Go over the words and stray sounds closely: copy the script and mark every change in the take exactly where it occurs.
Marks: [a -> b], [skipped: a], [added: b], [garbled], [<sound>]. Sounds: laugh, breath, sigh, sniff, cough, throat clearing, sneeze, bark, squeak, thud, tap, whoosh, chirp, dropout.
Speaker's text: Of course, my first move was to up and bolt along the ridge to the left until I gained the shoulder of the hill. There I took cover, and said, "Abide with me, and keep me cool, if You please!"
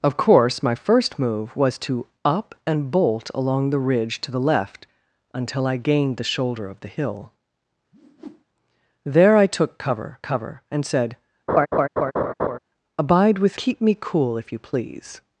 Of course, my first move was to up and bolt along the ridge to the left until I gained the shoulder of the hill. [whoosh] There I took cover, [added: cover] and said, [laugh] "Abide with [skipped: me, and] keep me cool, if You please!"